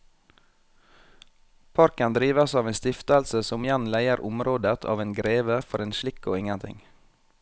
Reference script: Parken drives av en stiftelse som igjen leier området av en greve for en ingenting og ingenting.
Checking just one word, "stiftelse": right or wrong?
right